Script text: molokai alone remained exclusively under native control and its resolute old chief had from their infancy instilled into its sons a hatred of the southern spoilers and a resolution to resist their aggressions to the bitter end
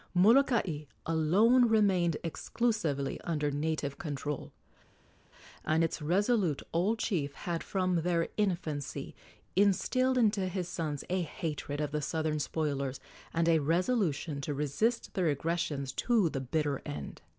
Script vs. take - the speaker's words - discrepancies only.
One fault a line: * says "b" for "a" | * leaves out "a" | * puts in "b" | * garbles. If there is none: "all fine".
* says "his" for "its"